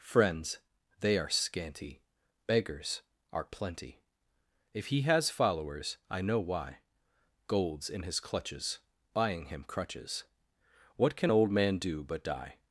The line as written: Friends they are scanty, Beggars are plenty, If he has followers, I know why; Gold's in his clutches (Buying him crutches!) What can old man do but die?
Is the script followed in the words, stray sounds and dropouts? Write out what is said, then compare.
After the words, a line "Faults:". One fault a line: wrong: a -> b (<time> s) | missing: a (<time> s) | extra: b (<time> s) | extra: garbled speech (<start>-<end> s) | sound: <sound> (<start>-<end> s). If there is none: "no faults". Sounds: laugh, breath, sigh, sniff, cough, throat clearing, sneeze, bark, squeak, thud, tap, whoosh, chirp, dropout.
Friends they are scanty, Beggars are plenty, If he has followers, I know why; Gold's in his clutches (Buying him crutches!) What can old man do but die?
Faults:
no faults